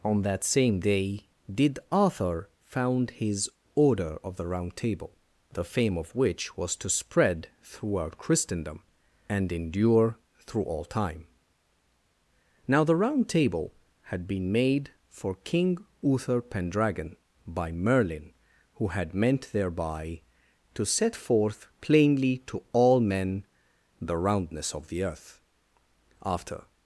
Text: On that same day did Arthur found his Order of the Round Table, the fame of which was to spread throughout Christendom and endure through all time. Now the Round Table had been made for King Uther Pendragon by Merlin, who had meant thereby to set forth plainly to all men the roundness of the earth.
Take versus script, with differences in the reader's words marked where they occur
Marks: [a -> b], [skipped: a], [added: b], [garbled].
On that same day did Arthur found his Order of the Round Table, the fame of which was to spread throughout Christendom and endure through all time. Now the Round Table had been made for King Uther Pendragon by Merlin, who had meant thereby to set forth plainly to all men the roundness of the earth. [added: After]